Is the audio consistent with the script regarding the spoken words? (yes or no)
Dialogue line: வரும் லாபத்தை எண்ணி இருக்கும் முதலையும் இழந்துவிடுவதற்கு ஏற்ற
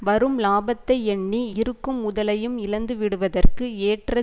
yes